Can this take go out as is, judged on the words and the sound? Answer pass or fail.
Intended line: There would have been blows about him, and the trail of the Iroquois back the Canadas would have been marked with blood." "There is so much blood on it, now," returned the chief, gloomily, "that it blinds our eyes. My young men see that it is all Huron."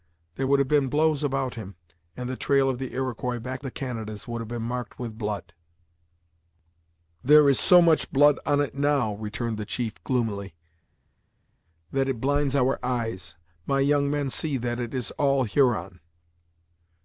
pass